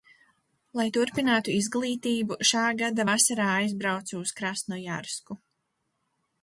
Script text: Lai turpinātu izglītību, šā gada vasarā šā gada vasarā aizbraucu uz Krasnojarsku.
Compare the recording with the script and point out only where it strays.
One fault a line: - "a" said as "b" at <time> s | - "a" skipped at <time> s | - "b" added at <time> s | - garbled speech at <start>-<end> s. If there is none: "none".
- "šā gada vasarā" skipped at 3.5 s